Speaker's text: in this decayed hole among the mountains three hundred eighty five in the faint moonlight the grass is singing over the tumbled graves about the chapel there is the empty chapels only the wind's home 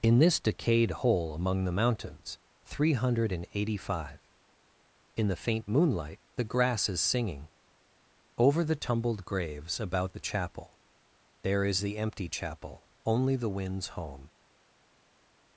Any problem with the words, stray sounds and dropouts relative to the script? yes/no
yes